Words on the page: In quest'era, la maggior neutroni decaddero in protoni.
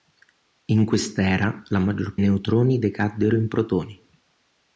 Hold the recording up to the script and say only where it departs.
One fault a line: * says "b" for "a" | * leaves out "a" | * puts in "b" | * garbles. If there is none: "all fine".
all fine